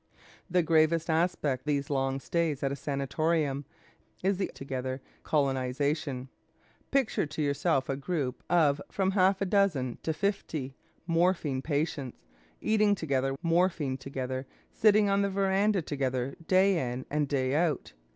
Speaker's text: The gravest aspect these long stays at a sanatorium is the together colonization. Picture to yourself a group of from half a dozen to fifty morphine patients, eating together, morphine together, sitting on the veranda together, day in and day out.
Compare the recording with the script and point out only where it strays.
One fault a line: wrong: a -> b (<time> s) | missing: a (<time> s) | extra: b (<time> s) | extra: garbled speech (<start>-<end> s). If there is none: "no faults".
no faults